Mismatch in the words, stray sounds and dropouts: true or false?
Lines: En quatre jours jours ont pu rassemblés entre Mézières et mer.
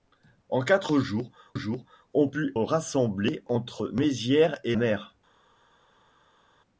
false